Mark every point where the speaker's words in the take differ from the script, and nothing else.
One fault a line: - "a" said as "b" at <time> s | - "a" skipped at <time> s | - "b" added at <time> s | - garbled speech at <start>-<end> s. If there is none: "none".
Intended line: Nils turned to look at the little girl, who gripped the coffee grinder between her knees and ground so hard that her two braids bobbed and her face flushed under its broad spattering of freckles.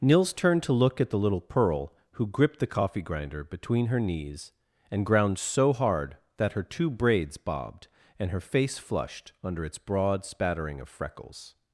- "girl" said as "pearl" at 1.4 s